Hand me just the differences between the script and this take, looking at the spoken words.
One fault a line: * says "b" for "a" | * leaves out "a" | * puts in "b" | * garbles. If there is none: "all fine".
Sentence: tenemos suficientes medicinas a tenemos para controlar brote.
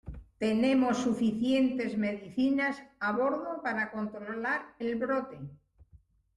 * says "bordo" for "tenemos"
* puts in "el"